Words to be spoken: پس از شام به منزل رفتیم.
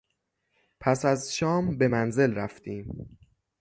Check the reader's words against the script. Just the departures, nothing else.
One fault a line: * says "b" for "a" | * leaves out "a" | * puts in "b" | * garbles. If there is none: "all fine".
all fine